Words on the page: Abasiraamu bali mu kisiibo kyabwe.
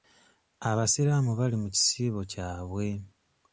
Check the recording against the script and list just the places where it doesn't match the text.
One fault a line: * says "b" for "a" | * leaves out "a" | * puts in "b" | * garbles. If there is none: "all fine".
all fine